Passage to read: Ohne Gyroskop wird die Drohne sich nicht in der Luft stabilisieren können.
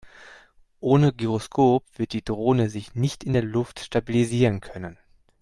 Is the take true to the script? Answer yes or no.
yes